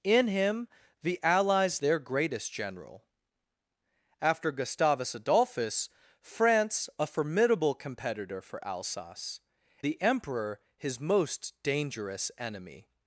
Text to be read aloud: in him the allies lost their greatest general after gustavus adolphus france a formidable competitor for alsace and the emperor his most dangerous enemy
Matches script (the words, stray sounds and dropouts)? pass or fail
fail